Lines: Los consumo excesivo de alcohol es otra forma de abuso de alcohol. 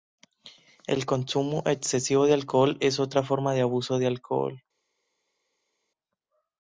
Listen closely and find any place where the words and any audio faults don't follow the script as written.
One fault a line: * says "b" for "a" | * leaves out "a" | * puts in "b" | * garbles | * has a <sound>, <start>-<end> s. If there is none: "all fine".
* says "El" for "Los"